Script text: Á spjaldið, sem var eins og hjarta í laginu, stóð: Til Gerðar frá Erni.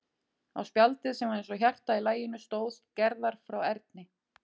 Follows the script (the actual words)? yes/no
no